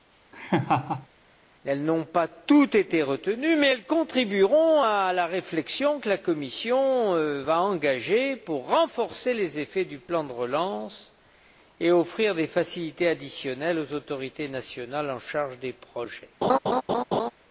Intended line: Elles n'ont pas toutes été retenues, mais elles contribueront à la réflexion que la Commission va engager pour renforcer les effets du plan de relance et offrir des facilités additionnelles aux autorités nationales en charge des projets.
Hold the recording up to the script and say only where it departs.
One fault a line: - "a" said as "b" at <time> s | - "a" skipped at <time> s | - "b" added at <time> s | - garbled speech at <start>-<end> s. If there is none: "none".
none